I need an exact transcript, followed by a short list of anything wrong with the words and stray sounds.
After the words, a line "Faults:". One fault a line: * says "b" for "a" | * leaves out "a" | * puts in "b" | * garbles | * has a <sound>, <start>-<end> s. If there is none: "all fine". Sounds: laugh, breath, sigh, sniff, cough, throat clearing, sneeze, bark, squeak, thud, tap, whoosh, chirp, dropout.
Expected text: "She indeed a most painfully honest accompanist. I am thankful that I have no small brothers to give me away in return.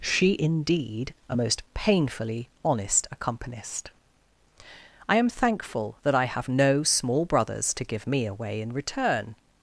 "She indeed a most painfully honest accompanist. I am thankful that I have no small brothers to give me away in return.
Faults:
all fine